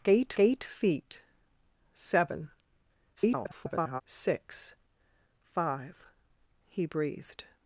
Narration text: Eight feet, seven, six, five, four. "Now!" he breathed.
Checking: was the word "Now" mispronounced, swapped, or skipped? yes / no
yes